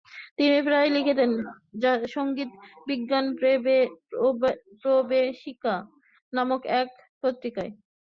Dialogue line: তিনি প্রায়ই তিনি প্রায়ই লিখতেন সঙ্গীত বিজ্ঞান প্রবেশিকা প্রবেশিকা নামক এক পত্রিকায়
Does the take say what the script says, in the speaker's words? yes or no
no